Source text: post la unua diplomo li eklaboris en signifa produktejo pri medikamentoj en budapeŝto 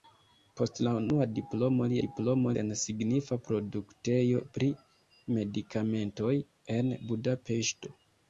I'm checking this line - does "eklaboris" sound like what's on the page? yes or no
no